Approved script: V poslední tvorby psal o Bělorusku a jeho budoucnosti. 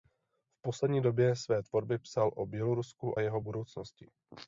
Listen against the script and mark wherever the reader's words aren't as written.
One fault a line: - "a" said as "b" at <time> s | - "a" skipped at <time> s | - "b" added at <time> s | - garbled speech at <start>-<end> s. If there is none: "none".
- "době své" added at 1.0 s